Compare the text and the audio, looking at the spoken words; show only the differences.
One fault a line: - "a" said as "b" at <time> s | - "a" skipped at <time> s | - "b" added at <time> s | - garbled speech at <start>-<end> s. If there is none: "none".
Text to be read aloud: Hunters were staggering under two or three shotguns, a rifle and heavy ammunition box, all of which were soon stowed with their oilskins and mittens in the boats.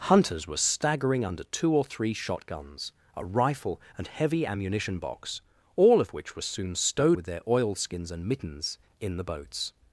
none